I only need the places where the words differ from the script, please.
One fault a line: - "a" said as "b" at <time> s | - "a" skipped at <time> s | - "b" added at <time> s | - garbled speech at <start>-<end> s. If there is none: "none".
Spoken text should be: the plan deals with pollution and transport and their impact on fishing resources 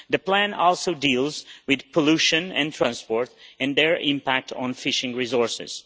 - "also" added at 0.5 s